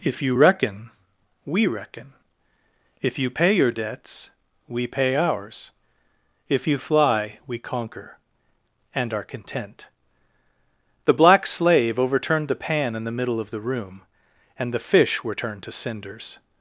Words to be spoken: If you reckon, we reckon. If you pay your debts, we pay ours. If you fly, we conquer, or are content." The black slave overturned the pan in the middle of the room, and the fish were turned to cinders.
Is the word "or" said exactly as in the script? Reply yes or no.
no